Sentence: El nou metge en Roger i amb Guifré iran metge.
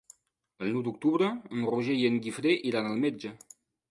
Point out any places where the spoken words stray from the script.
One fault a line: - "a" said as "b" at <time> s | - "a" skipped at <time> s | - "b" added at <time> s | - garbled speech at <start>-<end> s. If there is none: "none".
- "metge" said as "d'octubre" at 0.9 s
- "amb" said as "en" at 2.1 s
- "al" added at 2.9 s